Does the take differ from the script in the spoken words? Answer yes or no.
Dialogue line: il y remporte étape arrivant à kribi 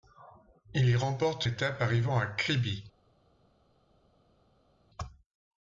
no